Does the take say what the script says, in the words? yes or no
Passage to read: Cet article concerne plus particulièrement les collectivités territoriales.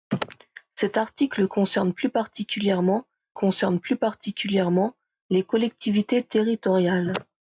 no